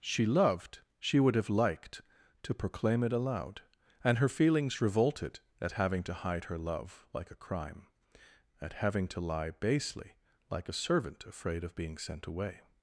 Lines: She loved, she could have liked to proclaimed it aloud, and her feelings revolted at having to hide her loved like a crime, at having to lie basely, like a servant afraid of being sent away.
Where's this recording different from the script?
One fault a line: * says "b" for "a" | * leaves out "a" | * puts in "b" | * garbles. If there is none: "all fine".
* says "would" for "could"
* says "proclaim" for "proclaimed"
* says "love" for "loved"